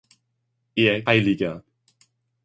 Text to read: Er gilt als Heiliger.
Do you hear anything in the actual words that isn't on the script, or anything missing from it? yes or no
yes